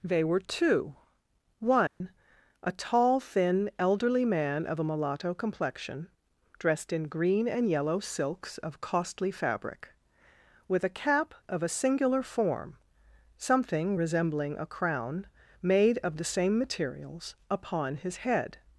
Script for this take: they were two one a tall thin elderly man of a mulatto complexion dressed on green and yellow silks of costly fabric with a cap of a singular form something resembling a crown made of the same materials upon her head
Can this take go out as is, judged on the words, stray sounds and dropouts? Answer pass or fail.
fail